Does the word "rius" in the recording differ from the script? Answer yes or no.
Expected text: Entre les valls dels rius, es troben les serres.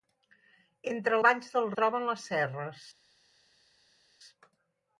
yes